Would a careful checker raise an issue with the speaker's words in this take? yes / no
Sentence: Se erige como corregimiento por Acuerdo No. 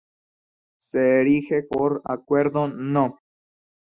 yes